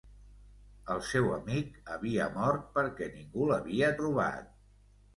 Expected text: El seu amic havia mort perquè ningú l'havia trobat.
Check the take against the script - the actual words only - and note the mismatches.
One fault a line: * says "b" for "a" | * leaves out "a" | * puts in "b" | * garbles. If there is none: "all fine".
all fine